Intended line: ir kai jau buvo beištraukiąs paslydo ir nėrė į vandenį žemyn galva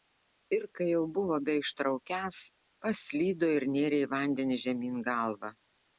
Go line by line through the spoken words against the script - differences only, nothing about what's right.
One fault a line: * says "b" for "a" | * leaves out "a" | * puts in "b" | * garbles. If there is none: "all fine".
all fine